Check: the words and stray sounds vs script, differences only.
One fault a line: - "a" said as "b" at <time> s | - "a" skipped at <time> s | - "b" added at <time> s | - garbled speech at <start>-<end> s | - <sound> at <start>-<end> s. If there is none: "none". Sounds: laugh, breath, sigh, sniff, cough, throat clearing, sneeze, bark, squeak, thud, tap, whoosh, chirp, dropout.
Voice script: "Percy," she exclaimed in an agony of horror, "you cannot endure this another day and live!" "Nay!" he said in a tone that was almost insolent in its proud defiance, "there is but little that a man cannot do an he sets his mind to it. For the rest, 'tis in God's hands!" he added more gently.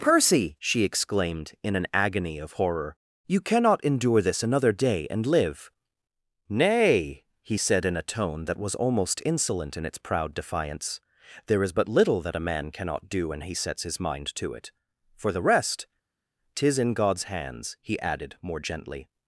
- "an" said as "when" at 13.3 s